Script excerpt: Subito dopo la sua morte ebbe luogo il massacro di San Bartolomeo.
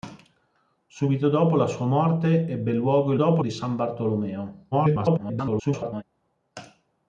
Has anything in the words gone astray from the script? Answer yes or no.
yes